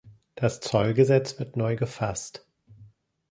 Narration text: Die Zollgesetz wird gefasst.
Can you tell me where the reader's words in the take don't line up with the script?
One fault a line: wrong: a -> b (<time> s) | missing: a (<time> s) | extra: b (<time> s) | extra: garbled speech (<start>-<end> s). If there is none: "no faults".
wrong: Die -> Das (0.3 s)
extra: neu (1.6 s)